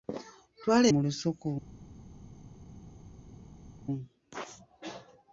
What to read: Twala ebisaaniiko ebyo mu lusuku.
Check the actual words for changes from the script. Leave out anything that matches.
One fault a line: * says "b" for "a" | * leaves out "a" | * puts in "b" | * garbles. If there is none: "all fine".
* leaves out "ebisaaniiko ebyo"